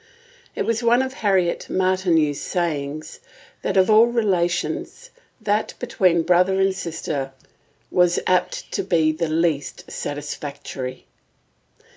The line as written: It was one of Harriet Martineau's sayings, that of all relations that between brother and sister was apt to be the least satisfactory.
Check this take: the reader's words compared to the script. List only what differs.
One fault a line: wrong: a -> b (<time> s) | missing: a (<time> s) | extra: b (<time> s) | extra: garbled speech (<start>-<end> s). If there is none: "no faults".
no faults